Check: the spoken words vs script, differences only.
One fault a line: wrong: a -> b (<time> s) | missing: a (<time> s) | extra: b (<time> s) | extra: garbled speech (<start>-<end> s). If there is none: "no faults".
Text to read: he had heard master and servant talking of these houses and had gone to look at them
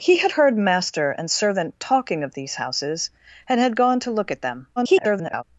extra: garbled speech (4.8-5.4 s)